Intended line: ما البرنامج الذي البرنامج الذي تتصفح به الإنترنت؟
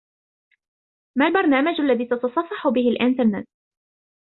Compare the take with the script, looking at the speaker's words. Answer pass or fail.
fail